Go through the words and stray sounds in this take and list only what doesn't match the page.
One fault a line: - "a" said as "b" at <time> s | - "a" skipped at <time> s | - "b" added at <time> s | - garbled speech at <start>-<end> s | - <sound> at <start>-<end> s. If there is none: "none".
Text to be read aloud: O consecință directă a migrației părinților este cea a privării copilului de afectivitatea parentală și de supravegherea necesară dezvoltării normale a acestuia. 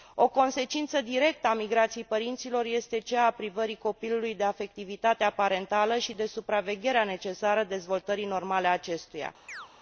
- chirp at 9.5-9.7 s